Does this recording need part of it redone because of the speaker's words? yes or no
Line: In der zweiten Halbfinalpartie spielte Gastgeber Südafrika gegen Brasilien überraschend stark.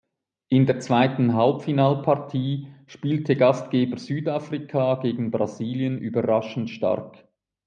no